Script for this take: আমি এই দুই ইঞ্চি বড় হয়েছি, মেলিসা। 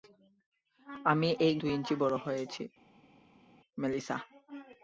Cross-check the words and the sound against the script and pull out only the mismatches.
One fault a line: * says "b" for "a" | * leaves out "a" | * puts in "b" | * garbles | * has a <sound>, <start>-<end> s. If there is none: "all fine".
all fine